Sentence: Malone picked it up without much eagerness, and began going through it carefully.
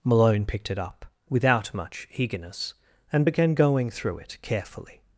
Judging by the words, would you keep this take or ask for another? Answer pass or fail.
pass